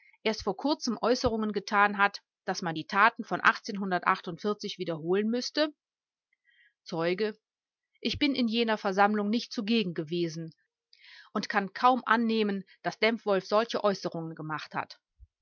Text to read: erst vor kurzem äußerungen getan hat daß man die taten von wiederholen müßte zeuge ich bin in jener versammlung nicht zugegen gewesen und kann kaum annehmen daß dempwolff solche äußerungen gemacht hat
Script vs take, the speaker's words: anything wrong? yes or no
no